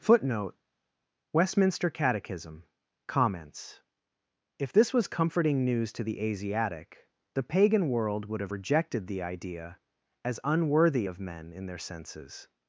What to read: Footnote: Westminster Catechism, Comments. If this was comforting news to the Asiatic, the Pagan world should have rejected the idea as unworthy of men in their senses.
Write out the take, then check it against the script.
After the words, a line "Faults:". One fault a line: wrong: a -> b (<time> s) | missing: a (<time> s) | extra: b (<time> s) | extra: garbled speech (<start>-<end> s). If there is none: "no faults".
Footnote: Westminster Catechism, Comments. If this was comforting news to the Asiatic, the Pagan world would have rejected the idea as unworthy of men in their senses.
Faults:
wrong: should -> would (8.2 s)